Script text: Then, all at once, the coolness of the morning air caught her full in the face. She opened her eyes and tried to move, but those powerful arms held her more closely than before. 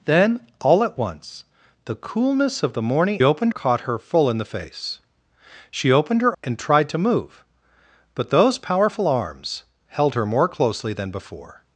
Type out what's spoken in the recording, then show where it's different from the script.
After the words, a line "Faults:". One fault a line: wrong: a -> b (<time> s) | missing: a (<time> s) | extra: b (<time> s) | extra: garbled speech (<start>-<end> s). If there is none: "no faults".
Then, all at once, the coolness of the morning opened caught her full in the face. She opened her and tried to move, but those powerful arms held her more closely than before.
Faults:
wrong: air -> opened (3.2 s)
missing: eyes (6.4 s)